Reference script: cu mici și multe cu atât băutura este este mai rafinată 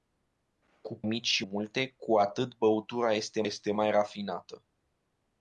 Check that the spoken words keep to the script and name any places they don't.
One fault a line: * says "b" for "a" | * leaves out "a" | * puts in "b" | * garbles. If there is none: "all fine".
all fine